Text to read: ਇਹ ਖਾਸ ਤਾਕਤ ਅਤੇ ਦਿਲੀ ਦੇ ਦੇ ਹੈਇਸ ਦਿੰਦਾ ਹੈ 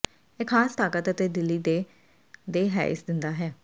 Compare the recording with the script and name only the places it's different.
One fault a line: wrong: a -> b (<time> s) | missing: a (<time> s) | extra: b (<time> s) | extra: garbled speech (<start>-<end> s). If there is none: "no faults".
no faults